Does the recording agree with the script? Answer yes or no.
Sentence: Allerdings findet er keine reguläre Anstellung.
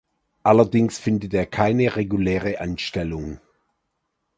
yes